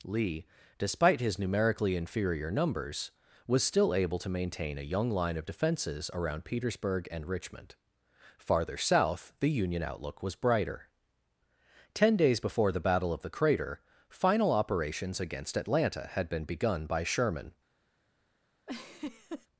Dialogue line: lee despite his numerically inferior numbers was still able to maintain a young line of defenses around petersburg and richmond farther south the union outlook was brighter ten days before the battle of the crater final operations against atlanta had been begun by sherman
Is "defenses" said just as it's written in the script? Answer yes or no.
yes